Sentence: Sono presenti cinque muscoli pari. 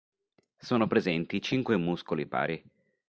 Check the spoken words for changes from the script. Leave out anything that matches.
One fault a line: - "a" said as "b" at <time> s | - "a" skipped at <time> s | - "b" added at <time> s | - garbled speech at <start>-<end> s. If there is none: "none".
none